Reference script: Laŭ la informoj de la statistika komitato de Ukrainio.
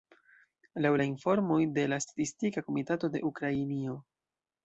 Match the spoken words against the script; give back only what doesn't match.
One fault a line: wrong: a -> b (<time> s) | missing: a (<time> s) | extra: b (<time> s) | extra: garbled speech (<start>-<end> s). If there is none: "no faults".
no faults